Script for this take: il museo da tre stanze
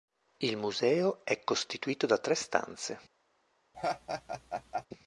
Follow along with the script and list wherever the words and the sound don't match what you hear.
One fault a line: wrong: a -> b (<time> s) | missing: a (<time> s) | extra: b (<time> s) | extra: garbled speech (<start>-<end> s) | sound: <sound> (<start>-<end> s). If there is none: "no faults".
extra: è costituito (1.2 s)
sound: laugh (3.7-4.9 s)